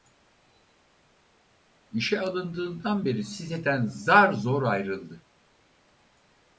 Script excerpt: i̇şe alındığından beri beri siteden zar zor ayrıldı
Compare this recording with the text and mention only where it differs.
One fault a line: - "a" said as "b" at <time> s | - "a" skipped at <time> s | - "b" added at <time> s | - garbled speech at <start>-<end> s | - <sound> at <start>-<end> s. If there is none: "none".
- "beri" skipped at 3.2 s